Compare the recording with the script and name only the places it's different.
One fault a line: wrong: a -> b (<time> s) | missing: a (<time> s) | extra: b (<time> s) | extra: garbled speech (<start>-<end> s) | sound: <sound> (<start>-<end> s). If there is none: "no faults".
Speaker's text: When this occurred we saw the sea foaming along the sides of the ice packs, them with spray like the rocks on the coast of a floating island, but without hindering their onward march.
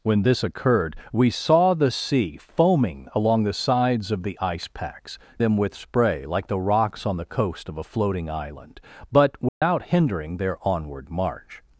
sound: dropout (9.5-9.6 s)